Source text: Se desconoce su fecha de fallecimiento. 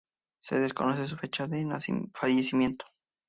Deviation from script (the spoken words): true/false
false